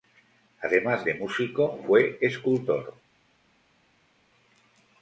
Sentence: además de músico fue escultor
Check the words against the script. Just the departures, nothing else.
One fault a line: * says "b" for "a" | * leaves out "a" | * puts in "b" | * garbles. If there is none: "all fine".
all fine